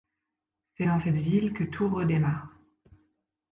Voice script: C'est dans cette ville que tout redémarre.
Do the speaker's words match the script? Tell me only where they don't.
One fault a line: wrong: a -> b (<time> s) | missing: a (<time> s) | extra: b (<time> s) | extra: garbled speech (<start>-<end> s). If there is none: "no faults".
no faults